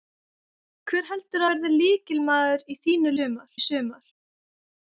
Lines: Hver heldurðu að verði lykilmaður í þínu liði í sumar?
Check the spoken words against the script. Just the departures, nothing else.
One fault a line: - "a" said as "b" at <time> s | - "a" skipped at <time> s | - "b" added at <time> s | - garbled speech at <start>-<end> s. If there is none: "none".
- "að" skipped at 1.5 s
- "liði" said as "sumar" at 3.2 s